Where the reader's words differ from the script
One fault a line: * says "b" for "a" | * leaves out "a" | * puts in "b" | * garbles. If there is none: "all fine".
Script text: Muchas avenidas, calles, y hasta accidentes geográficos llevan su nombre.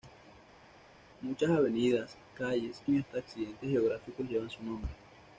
all fine